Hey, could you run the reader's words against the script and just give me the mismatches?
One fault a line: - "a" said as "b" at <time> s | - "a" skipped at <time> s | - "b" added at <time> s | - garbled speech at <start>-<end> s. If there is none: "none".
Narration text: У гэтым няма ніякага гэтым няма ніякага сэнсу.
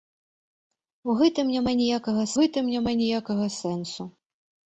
none